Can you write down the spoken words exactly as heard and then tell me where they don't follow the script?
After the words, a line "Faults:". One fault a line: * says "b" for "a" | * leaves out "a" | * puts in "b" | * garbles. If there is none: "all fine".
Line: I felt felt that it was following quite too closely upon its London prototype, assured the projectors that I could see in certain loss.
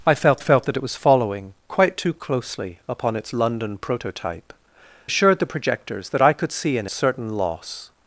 I felt felt that it was following quite too closely upon its London prototype, assured the projectors that I could see in certain loss.
Faults:
all fine